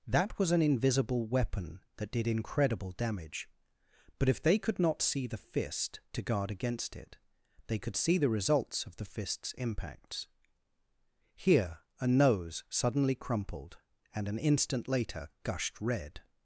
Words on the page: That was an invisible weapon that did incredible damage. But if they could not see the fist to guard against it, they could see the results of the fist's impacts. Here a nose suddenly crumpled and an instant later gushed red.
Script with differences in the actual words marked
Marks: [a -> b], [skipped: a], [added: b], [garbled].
That was an invisible weapon that did incredible damage. But if they could not see the fist to guard against it, they could see the results of the fist's impacts. Here a nose suddenly crumpled and an instant later gushed red.